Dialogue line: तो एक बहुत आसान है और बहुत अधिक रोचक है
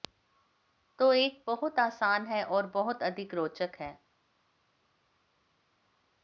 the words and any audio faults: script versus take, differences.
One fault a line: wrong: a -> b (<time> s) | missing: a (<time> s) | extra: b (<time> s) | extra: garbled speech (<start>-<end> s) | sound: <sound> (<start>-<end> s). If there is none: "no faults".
no faults